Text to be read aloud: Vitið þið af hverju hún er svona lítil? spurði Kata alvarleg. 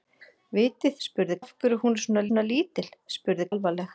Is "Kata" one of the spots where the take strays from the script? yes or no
yes